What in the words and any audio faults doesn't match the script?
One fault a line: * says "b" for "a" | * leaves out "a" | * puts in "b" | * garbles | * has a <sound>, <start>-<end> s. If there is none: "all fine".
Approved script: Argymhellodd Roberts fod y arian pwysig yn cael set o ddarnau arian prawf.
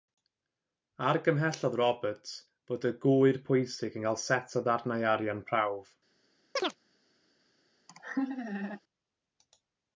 * says "gŵyr" for "arian"
* has a chirp, 6.6-6.8 s
* has a laugh, 7.9-8.8 s